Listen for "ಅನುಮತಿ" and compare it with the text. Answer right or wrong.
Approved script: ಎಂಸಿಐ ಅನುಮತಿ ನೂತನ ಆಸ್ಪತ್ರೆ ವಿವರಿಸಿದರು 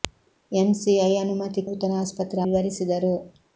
right